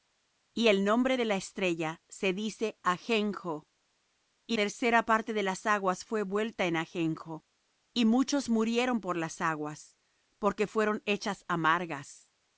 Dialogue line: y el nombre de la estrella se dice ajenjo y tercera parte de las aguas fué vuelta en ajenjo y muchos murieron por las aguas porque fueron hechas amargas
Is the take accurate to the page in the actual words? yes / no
yes